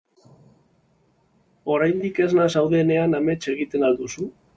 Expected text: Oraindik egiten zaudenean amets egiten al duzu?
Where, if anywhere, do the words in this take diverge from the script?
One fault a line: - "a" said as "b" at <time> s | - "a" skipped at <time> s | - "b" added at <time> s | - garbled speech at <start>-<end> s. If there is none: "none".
- "egiten" said as "esna" at 2.3 s